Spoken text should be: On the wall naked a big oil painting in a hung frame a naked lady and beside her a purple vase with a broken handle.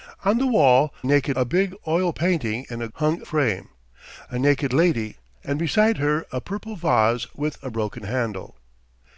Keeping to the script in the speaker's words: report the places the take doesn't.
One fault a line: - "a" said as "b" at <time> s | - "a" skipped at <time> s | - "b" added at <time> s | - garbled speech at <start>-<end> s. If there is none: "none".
none